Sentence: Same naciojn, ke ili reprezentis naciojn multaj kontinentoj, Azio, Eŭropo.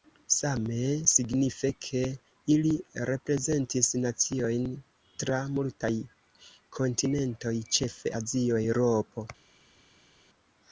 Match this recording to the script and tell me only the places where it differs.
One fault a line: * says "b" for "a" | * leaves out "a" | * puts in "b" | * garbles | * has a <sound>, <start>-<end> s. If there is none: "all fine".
* says "signife" for "naciojn"
* puts in "tra"
* puts in "ĉefe"